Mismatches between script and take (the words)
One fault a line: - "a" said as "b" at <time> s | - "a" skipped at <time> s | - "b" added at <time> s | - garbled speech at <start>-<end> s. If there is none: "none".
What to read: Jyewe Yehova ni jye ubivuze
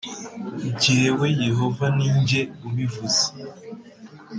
none